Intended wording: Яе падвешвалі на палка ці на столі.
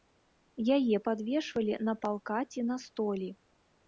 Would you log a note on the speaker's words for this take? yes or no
no